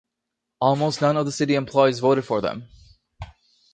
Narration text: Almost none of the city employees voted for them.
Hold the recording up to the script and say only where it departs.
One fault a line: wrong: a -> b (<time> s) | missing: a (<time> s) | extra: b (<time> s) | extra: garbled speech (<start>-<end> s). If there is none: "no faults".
no faults